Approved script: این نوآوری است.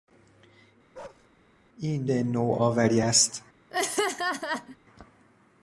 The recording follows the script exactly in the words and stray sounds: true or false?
false